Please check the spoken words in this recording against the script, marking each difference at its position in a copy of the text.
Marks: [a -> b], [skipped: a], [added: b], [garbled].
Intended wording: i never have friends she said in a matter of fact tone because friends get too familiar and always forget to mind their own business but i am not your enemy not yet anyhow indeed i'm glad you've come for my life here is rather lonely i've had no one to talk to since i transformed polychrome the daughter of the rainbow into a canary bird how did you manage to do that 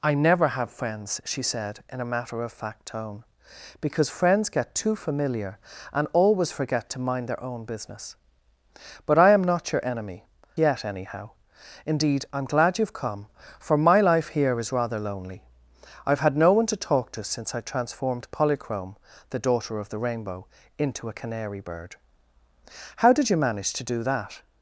i never have friends she said in a matter of fact tone because friends get too familiar and always forget to mind their own business but i am not your enemy [skipped: not] yet anyhow indeed i'm glad you've come for my life here is rather lonely i've had no one to talk to since i transformed polychrome the daughter of the rainbow into a canary bird how did you manage to do that